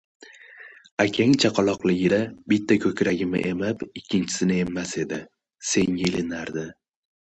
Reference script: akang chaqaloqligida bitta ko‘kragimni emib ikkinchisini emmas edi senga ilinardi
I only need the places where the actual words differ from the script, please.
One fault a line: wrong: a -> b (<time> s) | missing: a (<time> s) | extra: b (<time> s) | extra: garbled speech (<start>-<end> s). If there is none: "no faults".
no faults